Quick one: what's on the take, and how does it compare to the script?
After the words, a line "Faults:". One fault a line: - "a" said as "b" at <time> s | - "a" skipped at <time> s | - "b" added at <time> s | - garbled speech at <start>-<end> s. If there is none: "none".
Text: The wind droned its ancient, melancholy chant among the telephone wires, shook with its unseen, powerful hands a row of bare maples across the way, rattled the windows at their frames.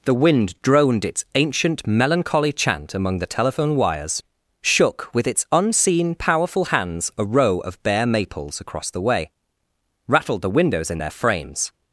The wind droned its ancient, melancholy chant among the telephone wires, shook with its unseen, powerful hands a row of bare maples across the way, rattled the windows in their frames.
Faults:
- "at" said as "in" at 10.9 s